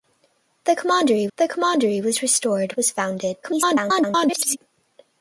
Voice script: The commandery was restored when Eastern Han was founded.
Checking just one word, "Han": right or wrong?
wrong